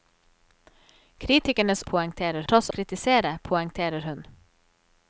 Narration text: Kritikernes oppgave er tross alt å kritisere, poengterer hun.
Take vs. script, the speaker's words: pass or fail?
fail